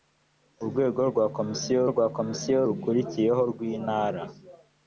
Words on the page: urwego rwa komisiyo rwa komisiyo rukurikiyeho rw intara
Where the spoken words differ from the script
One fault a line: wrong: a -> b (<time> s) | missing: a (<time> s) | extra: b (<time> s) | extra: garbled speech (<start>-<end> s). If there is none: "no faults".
no faults